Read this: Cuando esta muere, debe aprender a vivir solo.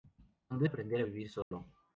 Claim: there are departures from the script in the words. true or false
true